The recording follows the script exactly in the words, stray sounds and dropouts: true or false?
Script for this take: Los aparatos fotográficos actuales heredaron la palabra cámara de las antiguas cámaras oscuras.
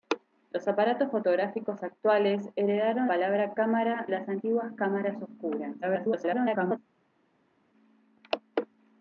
false